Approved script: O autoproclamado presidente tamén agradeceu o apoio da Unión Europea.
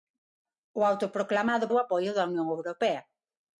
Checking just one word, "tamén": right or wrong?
wrong